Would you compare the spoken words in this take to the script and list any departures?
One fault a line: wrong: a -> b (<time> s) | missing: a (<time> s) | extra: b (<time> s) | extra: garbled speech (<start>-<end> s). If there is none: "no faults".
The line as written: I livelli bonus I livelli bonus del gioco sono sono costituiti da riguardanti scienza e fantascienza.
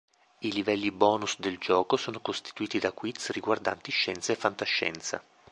missing: I livelli bonus (1.4 s)
missing: sono (2.2 s)
extra: quiz (2.9 s)